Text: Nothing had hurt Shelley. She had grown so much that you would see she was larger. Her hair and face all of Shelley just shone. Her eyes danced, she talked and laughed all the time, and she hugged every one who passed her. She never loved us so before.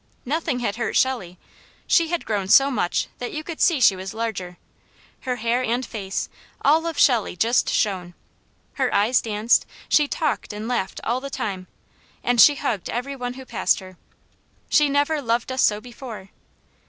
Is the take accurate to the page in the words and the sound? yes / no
no